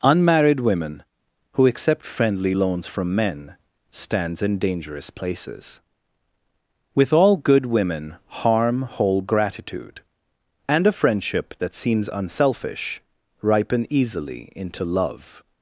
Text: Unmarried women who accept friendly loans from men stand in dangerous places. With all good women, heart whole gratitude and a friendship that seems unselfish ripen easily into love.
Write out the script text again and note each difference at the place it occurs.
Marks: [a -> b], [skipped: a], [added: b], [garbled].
Unmarried women who accept friendly loans from men [stand -> stands] in dangerous places. With all good women, [heart -> harm] whole gratitude and a friendship that seems unselfish ripen easily into love.